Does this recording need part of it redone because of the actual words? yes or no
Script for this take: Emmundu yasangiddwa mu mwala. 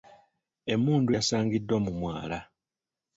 no